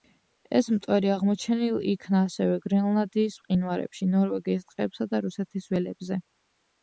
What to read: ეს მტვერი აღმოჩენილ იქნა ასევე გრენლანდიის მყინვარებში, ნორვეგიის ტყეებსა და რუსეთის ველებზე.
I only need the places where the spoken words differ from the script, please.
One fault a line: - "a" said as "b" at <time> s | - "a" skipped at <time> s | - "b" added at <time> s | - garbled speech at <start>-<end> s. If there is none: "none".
none